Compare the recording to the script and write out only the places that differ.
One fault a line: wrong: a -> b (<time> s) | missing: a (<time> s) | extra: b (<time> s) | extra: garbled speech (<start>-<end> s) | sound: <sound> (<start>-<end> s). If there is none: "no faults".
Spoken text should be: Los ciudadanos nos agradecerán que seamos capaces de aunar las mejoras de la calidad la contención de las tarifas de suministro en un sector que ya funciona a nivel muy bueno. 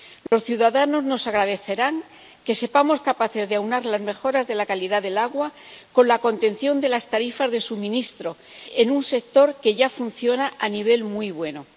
sound: dropout (0.3-0.3 s)
extra: del agua con (5.0 s)